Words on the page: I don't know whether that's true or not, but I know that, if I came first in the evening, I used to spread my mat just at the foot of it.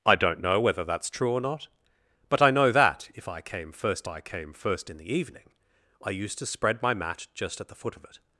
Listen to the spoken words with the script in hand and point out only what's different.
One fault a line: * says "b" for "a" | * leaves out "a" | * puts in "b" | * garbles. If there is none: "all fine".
* puts in "I came first"